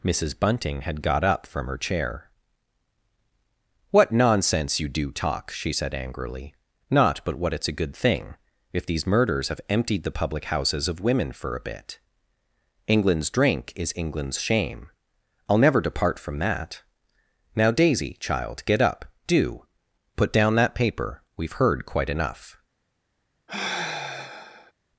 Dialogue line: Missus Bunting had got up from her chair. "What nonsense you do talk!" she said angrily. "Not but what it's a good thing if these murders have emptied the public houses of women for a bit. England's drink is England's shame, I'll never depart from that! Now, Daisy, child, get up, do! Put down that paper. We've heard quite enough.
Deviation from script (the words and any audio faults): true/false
true